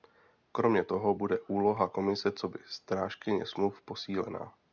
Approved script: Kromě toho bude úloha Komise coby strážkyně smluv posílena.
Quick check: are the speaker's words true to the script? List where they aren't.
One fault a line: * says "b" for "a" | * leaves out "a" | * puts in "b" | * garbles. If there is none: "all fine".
all fine